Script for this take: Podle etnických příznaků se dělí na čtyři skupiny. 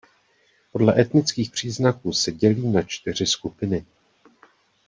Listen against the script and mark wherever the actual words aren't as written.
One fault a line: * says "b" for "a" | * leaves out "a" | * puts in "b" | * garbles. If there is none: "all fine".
all fine